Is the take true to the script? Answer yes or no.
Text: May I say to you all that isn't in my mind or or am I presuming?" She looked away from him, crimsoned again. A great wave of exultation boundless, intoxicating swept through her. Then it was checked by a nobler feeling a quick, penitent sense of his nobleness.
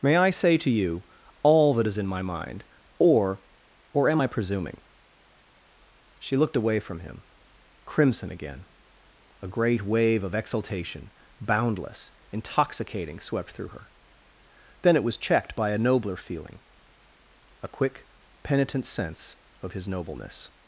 no